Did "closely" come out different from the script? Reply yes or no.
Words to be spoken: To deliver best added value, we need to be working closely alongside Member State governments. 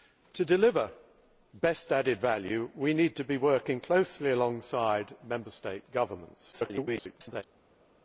no